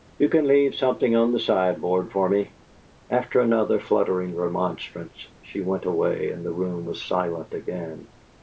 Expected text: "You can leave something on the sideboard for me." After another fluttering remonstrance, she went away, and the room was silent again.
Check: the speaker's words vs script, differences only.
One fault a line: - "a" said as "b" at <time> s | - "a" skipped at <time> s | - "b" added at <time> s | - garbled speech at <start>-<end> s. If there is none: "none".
none